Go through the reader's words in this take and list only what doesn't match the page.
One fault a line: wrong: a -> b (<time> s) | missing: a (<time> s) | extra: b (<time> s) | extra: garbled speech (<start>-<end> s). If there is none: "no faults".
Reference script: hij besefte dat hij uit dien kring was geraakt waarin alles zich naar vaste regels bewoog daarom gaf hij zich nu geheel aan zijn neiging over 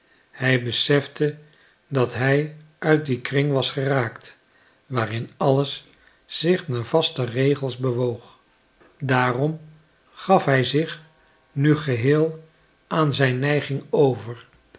no faults